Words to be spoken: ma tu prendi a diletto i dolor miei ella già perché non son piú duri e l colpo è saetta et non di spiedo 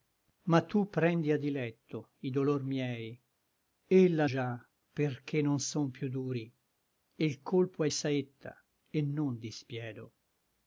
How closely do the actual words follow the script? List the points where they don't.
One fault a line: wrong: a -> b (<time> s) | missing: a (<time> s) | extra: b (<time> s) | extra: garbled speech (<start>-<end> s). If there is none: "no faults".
no faults